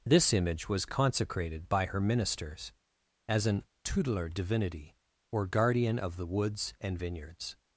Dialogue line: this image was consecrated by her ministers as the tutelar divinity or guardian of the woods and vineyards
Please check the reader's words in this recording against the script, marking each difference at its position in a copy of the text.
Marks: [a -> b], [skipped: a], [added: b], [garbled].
this image was consecrated by her ministers as [the -> an] tutelar divinity or guardian of the woods and vineyards